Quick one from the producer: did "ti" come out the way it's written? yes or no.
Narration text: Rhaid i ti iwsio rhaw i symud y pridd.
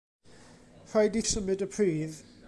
no